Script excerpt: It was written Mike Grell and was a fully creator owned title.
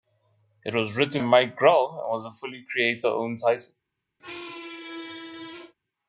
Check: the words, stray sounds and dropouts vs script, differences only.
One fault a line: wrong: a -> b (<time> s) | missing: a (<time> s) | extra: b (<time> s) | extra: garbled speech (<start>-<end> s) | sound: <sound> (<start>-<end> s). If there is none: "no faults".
sound: squeak (4.2-5.7 s)